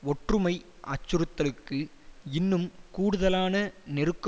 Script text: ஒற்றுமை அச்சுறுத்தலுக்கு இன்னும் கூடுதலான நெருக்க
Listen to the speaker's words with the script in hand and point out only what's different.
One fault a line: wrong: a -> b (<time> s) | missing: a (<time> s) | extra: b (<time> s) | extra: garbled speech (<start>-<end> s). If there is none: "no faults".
no faults